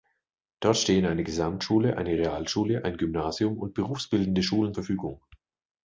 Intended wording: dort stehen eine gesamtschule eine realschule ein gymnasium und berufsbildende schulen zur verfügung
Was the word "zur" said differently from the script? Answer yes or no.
yes